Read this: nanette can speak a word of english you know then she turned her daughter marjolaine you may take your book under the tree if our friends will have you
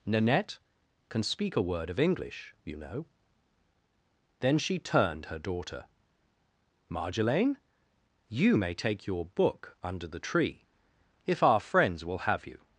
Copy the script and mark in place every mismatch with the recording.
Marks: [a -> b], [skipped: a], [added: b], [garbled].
nanette can speak a word of english you know then she turned her daughter marjolaine you may take your book under the tree if our friends will have you